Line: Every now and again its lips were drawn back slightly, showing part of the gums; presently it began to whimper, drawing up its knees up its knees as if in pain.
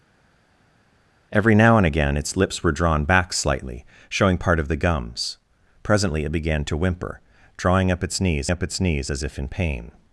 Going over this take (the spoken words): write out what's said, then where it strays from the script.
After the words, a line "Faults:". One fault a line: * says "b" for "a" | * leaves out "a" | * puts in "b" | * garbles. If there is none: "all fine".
Every now and again its lips were drawn back slightly, showing part of the gums; presently it began to whimper, drawing up its knees up its knees as if in pain.
Faults:
all fine